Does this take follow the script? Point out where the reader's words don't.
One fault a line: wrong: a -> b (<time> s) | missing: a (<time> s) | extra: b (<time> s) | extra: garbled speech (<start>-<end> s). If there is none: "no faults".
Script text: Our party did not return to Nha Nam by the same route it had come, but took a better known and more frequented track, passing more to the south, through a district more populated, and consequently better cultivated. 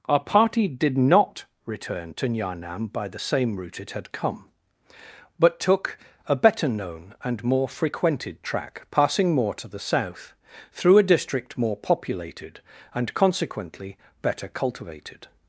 no faults